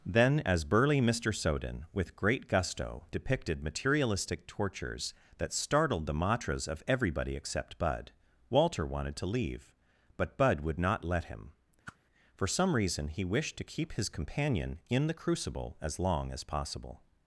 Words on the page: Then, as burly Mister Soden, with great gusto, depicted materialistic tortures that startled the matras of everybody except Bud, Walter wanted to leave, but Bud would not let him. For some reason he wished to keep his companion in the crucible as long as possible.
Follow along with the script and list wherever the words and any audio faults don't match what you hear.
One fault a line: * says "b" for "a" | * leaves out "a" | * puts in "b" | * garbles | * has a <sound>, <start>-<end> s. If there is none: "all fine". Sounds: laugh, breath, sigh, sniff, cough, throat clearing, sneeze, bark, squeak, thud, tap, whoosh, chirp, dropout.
* has a whoosh, 11.9-12.0 s